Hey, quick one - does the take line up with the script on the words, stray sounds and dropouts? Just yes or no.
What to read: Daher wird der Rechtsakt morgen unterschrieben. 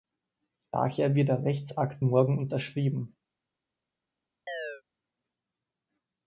no